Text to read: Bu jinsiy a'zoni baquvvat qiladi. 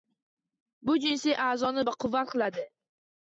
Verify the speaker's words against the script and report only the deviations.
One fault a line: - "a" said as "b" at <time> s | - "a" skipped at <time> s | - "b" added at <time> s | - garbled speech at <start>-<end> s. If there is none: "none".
none